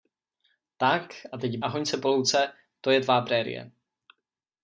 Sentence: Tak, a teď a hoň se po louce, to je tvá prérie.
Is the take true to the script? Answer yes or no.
yes